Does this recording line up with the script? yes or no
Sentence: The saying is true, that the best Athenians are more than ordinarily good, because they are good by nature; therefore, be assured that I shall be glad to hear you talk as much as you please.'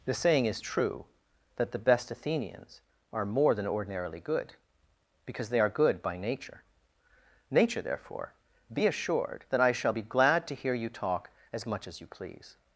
no